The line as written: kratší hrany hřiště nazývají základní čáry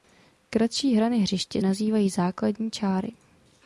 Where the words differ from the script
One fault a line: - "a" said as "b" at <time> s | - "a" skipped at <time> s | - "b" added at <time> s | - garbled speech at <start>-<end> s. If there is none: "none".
none